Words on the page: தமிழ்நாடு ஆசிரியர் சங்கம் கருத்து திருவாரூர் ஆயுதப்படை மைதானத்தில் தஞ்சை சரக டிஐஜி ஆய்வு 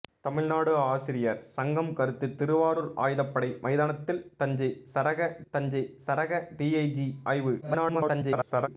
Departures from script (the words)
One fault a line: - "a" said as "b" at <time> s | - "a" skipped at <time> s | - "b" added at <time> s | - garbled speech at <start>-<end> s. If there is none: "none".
- "தஞ்சை சரக" added at 5.5 s
- garbled speech at 7.6-8.7 s